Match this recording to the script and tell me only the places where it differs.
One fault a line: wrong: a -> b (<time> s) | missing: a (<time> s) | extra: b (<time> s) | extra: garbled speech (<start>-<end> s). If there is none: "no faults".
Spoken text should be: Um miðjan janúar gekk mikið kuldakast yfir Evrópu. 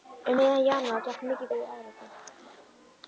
missing: kuldakast (1.5 s)